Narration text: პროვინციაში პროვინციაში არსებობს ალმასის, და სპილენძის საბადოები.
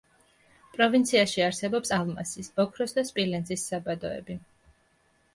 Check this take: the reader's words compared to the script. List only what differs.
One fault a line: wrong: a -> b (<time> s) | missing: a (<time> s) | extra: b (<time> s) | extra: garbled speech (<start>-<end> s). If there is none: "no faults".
missing: პროვინციაში (1.4 s)
extra: ოქროს (2.6 s)